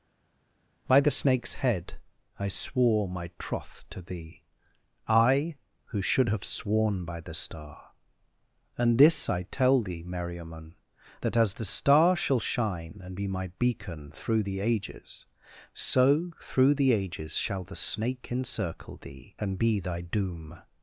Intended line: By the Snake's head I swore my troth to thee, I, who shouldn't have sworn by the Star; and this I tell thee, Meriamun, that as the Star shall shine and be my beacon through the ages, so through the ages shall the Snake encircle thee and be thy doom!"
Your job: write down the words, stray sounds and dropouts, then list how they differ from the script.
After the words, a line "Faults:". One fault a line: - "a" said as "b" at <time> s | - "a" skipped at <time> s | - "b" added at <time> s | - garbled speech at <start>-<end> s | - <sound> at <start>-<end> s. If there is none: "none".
By the Snake's head I swore my troth to thee, I, who should have sworn by the Star; and this I tell thee, Meriamun, that as the Star shall shine and be my beacon through the ages, so through the ages shall the Snake encircle thee and be thy doom!"
Faults:
- "shouldn't" said as "should" at 6.0 s